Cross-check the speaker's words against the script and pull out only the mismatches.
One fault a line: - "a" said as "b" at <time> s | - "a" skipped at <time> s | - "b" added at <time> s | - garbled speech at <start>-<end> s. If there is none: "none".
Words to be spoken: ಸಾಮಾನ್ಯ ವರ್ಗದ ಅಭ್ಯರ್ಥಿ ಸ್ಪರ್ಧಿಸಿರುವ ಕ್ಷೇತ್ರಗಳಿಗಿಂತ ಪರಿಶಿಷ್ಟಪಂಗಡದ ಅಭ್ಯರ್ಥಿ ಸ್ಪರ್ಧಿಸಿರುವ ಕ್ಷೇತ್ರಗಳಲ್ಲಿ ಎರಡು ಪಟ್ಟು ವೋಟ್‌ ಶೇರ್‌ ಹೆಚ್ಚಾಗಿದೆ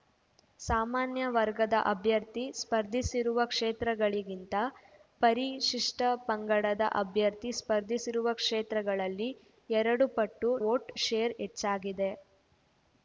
none